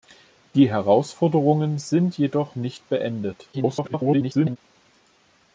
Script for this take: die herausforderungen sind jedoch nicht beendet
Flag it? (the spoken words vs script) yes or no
yes